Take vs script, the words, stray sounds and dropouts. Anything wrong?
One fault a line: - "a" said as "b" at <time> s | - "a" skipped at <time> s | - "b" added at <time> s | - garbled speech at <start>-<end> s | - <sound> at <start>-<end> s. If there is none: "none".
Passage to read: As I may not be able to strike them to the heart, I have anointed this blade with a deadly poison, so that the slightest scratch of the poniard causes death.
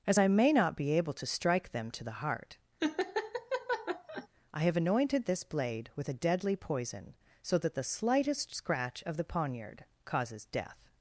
- laugh at 2.8-4.3 s